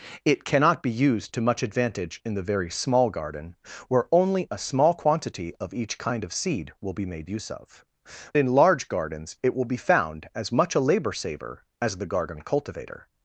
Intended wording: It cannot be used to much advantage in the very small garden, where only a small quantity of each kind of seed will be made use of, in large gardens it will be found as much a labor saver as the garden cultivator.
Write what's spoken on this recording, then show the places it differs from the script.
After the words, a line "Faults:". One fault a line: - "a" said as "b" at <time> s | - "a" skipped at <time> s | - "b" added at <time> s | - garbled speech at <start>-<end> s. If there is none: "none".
It cannot be used to much advantage in the very small garden, where only a small quantity of each kind of seed will be made use of, in large gardens it will be found as much a labor saver as the garden cultivator.
Faults:
none